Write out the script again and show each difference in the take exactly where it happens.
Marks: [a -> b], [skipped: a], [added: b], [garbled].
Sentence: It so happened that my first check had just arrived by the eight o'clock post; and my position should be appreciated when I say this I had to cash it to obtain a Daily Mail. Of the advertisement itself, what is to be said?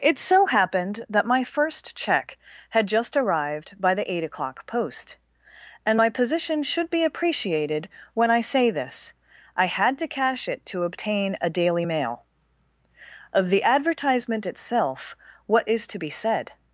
It so happened that my first check had just arrived by the eight o'clock post; and my position should be appreciated when I say this I had to cash it to obtain a Daily Mail. Of the advertisement itself, what is to be said?